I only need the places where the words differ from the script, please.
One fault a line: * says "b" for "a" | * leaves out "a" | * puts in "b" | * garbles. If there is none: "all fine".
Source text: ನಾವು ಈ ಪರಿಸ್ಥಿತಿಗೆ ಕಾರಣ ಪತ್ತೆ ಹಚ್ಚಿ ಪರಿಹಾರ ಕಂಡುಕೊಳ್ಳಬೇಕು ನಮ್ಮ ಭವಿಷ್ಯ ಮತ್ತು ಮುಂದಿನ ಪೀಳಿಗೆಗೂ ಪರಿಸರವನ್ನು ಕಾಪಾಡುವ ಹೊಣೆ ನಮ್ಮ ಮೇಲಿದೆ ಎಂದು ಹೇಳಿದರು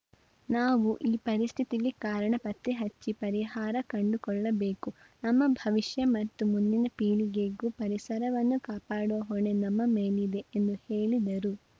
all fine